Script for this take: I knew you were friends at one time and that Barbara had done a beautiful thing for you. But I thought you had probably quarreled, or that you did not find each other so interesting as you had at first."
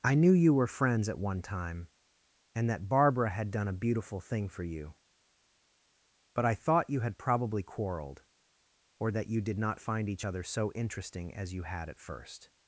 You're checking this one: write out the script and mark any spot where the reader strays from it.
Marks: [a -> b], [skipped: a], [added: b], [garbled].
I knew you were friends at one time and that Barbara had done a beautiful thing for you. But I thought you had probably quarreled, or that you did not find each other so interesting as you had at first."